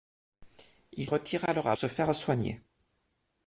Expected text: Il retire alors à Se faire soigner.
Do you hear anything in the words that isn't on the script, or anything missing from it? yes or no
no